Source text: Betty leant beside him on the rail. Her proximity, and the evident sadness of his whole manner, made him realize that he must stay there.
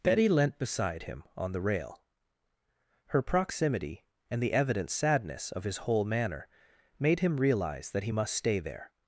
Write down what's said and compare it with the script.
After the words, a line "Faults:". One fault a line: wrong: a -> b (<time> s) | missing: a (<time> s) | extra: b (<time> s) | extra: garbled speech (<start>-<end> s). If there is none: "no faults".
Betty leant beside him on the rail. Her proximity, and the evident sadness of his whole manner, made him realize that he must stay there.
Faults:
no faults